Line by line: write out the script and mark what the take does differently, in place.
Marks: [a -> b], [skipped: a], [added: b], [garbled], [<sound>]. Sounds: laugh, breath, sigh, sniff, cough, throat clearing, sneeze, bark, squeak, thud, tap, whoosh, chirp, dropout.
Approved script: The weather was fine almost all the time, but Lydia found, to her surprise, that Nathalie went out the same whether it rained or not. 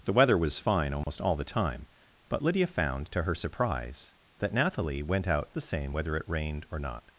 The weather was fine almost [dropout] all the time, but Lydia found, to her surprise, that Nathalie went out the same whether it rained or not.